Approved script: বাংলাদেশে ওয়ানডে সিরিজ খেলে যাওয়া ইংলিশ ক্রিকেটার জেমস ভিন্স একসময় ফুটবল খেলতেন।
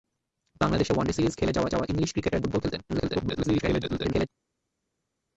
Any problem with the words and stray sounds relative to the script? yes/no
yes